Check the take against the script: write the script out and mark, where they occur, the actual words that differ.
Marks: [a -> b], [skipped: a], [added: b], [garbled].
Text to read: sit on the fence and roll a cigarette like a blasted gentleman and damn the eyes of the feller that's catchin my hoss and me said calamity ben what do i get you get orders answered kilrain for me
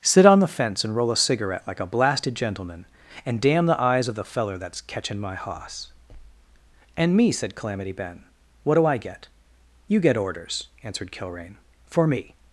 sit on the fence and roll a cigarette like a blasted gentleman and damn the eyes of the feller that's catchin my hoss and me said calamity ben what do i get you get orders answered kilrain for me